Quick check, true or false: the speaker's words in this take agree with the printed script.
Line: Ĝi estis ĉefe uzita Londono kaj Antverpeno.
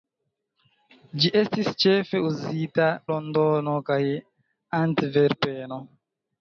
true